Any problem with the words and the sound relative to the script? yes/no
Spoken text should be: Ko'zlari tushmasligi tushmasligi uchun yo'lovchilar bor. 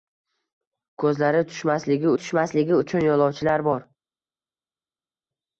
no